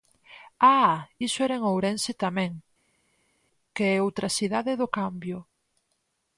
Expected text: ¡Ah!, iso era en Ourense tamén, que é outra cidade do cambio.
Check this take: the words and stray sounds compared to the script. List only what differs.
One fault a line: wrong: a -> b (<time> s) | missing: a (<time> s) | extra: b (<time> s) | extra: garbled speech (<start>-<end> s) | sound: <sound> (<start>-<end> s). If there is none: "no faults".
no faults